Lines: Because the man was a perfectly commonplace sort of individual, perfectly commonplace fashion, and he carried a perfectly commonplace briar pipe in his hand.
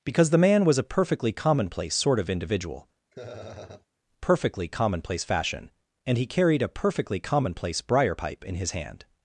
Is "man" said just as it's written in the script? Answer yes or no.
yes